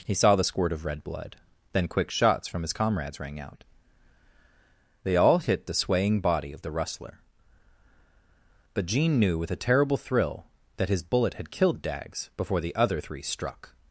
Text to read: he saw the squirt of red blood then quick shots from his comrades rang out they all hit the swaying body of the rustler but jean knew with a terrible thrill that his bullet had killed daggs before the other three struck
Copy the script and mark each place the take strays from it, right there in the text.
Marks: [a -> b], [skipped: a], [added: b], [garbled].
he saw the squirt of red blood then quick shots from his comrades rang out they all hit the swaying body of the rustler but jean knew with a terrible thrill that his bullet had killed daggs before the other three struck